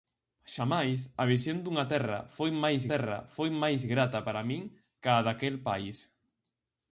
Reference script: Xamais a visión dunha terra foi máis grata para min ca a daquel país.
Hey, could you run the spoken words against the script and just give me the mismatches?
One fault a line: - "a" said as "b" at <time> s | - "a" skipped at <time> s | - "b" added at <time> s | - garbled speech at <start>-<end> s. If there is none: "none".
- "terra foi máis" added at 2.9 s